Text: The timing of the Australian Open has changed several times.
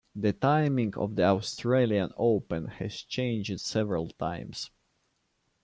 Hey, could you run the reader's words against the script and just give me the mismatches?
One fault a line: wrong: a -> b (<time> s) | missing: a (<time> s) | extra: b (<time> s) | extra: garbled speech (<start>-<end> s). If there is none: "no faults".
no faults